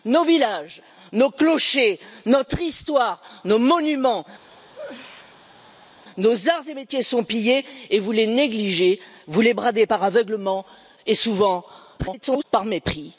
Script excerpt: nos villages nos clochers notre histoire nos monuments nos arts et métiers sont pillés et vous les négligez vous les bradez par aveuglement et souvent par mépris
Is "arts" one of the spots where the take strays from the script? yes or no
no